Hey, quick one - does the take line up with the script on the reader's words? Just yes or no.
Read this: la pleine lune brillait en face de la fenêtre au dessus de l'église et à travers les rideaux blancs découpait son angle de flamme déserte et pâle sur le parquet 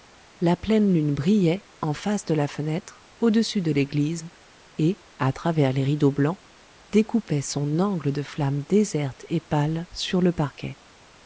yes